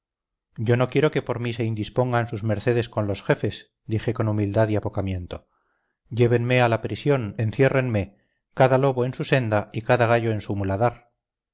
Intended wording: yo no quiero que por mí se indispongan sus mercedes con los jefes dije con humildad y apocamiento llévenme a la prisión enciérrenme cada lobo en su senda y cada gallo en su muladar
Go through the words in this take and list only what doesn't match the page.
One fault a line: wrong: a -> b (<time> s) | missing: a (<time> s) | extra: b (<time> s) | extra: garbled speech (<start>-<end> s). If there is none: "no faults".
no faults